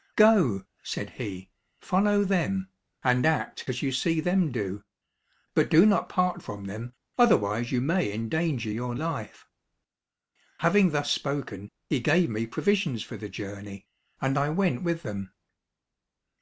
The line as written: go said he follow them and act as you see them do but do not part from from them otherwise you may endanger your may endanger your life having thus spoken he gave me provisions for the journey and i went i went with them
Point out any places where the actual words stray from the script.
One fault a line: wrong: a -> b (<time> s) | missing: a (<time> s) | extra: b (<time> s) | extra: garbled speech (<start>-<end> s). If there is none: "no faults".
missing: from (6.7 s)
missing: may endanger your (8.9 s)
missing: i went (14.8 s)